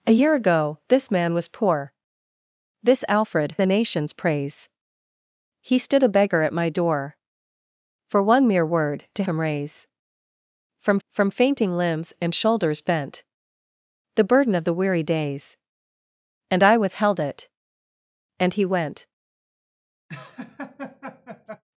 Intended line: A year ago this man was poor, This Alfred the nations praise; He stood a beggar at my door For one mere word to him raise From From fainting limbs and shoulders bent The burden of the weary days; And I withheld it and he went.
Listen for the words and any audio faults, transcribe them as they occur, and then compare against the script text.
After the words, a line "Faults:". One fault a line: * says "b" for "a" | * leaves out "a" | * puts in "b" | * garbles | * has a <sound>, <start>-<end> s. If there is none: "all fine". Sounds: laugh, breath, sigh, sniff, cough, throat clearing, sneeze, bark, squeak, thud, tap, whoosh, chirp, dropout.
A year ago this man was poor, This Alfred the nations praise; He stood a beggar at my door For one mere word to him raise From From fainting limbs and shoulders bent The burden of the weary days; And I withheld it and he went.
Faults:
* has a laugh, 20.1-21.6 s